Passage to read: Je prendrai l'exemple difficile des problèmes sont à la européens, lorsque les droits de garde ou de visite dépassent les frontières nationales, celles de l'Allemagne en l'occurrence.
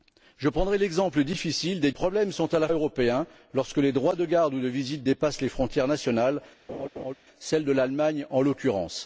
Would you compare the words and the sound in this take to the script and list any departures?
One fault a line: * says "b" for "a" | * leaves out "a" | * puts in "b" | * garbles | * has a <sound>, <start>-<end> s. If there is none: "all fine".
* has a laugh, 6.7-7.1 s